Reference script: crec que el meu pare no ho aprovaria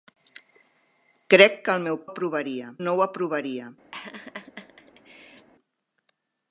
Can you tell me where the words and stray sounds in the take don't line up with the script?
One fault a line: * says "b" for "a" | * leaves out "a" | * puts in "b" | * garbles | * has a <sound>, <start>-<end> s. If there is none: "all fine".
* says "aprovaria" for "pare"
* has a laugh, 3.9-5.5 s